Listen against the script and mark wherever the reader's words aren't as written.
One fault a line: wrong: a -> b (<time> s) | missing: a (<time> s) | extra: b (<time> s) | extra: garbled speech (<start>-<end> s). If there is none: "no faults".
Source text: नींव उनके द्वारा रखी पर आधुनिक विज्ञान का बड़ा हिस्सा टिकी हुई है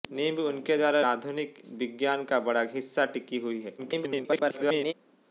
missing: रखी पर (1.0 s)
extra: garbled speech (3.8-4.9 s)